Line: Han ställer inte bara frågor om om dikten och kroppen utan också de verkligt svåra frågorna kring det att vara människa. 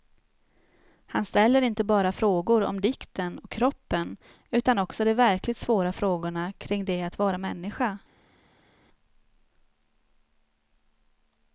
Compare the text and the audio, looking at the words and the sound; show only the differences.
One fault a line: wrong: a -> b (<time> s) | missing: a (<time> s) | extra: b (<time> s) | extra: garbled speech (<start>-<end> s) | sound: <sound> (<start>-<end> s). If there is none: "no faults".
missing: om (2.8 s)